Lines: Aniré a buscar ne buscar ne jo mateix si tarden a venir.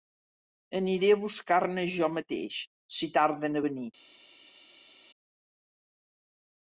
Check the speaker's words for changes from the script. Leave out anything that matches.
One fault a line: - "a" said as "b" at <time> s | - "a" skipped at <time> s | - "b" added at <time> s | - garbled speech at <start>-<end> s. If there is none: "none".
- "buscar ne" skipped at 1.8 s